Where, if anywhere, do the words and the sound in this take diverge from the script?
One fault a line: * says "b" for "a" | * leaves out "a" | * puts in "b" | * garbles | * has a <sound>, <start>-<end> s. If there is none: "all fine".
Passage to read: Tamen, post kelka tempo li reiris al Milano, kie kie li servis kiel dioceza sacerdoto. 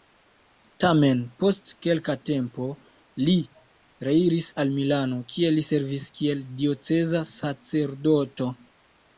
* leaves out "kie"